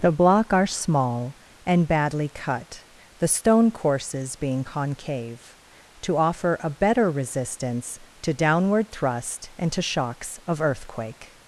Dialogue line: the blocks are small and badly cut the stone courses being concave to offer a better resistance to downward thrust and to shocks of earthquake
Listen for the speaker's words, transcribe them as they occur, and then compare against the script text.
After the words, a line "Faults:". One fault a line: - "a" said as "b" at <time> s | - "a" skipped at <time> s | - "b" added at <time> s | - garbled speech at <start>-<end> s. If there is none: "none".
the block are small and badly cut the stone courses being concave to offer a better resistance to downward thrust and to shocks of earthquake
Faults:
- "blocks" said as "block" at 0.1 s